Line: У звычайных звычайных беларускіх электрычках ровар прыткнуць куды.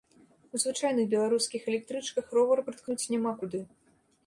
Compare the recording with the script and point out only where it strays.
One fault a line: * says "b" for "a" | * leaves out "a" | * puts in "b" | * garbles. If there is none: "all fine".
* leaves out "звычайных"
* puts in "няма"